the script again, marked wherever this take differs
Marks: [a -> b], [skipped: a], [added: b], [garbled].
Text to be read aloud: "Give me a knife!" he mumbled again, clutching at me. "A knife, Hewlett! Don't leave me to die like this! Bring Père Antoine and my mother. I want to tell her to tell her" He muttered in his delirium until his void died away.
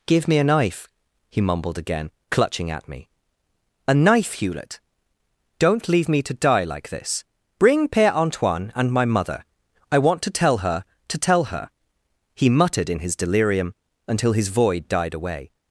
"Give me a knife!" he mumbled again, clutching at me. "A knife, Hewlett! Don't leave me to die like this! Bring Père Antoine and my mother. I want to tell her to tell her" He muttered in his delirium until his void died away.